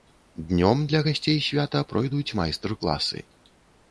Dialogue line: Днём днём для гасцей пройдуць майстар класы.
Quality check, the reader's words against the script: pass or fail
fail